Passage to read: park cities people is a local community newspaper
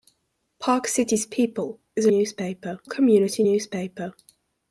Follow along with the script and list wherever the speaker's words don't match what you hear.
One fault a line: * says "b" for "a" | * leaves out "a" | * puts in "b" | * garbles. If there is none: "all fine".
* says "newspaper" for "local"